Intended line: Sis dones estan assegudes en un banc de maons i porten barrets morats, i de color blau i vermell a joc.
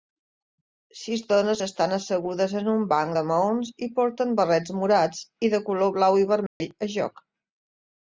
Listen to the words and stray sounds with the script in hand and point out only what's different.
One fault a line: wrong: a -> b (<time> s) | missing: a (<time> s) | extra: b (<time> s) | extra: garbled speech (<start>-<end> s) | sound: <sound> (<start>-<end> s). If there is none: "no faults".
sound: dropout (6.5-6.6 s)